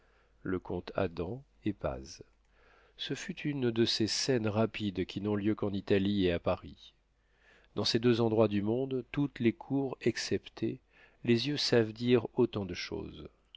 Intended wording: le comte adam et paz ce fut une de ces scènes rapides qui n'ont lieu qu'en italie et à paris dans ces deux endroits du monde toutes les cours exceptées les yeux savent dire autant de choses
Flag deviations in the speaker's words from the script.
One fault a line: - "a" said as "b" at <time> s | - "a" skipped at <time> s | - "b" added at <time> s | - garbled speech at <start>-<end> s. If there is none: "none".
none